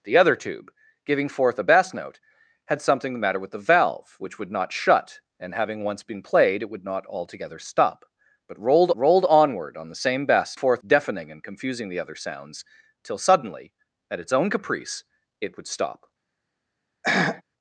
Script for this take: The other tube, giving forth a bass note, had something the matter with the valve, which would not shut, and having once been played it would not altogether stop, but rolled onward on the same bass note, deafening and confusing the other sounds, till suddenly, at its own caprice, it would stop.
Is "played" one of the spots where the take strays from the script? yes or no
no